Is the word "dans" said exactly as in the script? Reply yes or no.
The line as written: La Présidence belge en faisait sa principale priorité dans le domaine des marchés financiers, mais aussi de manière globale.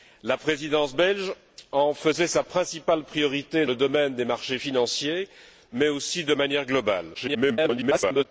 no